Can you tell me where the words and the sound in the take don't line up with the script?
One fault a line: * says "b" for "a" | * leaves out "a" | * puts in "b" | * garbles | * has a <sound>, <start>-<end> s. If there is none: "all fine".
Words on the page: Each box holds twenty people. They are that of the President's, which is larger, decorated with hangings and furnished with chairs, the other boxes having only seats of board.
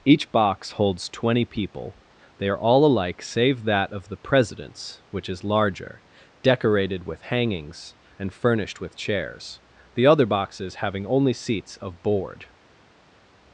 * puts in "all alike save"